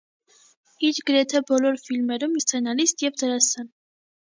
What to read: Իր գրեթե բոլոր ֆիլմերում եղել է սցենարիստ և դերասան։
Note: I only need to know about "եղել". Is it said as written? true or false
false